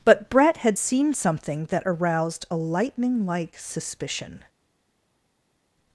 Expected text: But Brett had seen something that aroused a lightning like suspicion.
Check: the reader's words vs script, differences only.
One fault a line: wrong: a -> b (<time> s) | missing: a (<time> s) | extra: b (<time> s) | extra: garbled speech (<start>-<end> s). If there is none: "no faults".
no faults